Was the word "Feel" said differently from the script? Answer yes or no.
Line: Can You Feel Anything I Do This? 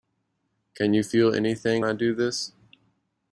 no